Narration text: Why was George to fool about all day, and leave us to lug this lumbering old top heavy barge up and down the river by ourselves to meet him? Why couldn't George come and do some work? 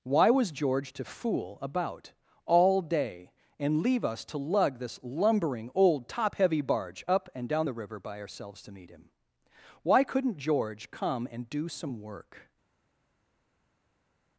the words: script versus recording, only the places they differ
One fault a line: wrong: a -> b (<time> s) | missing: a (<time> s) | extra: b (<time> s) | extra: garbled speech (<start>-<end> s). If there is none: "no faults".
no faults